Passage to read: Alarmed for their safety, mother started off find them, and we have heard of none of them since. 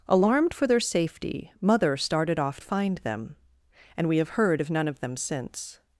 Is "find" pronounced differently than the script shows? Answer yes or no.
no